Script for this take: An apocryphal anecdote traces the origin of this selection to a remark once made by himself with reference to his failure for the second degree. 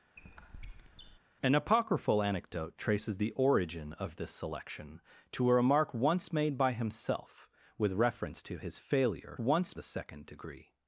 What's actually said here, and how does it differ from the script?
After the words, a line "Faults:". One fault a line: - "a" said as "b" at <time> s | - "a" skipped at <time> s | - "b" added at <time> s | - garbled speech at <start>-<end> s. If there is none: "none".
An apocryphal anecdote traces the origin of this selection to a remark once made by himself with reference to his failure once the second degree.
Faults:
- "for" said as "once" at 9.4 s